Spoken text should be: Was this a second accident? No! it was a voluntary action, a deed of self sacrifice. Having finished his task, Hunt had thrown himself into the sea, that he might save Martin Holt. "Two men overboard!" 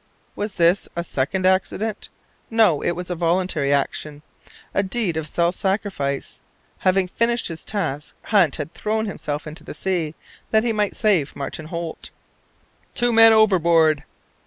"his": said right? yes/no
yes